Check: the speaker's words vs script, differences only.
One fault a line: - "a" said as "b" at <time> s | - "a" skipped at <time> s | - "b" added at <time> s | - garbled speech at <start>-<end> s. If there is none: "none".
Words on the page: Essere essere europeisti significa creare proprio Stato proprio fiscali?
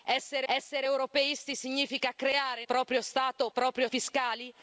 none